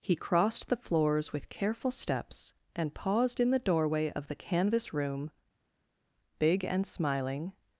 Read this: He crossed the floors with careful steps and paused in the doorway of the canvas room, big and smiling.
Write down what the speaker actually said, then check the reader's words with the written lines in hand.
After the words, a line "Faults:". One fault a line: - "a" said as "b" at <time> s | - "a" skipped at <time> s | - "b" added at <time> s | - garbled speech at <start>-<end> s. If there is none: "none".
He crossed the floors with careful steps and paused in the doorway of the canvas room, big and smiling.
Faults:
none